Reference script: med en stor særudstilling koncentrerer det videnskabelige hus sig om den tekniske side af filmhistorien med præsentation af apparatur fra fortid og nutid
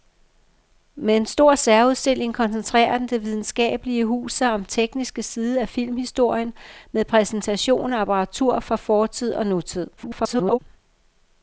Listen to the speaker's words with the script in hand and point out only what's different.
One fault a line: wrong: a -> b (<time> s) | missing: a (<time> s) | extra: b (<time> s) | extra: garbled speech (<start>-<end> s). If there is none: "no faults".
missing: den (4.7 s)
extra: garbled speech (10.0-10.6 s)